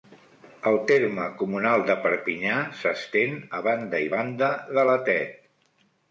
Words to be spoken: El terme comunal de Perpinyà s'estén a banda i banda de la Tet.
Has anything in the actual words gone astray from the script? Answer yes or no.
no